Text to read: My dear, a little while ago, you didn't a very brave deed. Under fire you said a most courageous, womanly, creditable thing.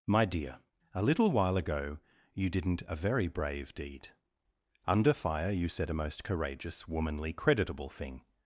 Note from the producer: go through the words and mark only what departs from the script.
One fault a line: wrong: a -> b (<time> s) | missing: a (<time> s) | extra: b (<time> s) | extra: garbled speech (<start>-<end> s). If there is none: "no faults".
no faults